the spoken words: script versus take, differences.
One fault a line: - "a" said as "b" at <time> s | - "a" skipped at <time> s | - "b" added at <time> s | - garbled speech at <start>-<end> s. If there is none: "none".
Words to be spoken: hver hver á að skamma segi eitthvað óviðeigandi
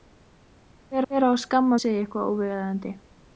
none